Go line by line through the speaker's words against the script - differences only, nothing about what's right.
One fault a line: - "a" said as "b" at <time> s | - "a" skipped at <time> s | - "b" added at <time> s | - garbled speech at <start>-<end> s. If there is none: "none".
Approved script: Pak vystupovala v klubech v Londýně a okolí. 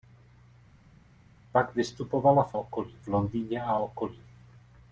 - "klubech" said as "okolí" at 2.5 s